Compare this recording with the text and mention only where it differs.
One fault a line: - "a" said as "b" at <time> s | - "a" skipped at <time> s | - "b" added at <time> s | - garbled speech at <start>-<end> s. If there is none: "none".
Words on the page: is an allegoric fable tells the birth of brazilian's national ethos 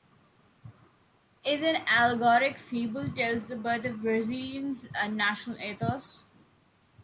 none